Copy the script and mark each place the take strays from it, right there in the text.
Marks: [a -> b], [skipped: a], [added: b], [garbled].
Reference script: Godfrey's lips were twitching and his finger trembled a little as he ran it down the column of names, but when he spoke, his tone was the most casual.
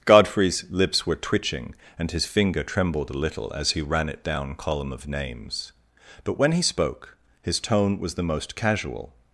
Godfrey's lips were twitching and his finger trembled a little as he ran it down [skipped: the] column of names, but when he spoke, his tone was the most casual.